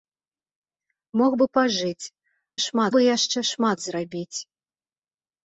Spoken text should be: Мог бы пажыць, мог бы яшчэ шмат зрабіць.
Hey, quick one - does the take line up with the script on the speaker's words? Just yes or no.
no